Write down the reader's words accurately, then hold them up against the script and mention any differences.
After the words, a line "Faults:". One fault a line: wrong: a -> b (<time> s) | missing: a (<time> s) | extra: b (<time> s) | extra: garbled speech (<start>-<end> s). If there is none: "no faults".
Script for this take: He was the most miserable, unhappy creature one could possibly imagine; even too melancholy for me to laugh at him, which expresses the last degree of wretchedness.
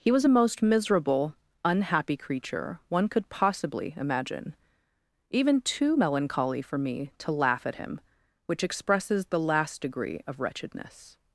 He was a most miserable, unhappy creature one could possibly imagine; even too melancholy for me to laugh at him, which expresses the last degree of wretchedness.
Faults:
wrong: the -> a (0.2 s)